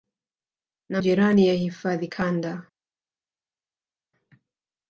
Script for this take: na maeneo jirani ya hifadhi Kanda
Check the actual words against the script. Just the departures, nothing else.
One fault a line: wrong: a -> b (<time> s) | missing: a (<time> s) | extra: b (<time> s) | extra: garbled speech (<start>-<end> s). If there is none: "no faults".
missing: maeneo (1.0 s)